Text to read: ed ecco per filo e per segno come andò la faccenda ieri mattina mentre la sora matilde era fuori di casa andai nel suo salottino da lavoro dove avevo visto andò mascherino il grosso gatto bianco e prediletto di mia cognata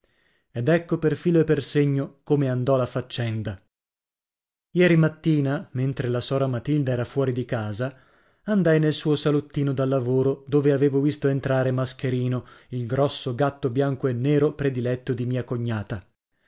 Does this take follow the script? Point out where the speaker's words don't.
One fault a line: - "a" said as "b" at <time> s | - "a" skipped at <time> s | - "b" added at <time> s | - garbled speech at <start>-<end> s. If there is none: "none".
- "andò" said as "entrare" at 11.3 s
- "nero" added at 14.1 s